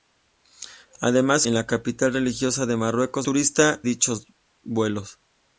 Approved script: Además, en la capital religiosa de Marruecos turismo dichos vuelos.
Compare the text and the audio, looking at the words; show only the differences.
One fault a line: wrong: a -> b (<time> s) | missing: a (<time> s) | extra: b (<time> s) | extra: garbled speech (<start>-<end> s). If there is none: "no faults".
no faults